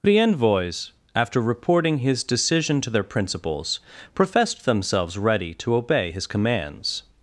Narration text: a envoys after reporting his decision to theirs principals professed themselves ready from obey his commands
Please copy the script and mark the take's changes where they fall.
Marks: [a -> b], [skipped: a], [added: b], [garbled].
[a -> the] envoys after reporting his decision to [theirs -> their] principals professed themselves ready [from -> to] obey his commands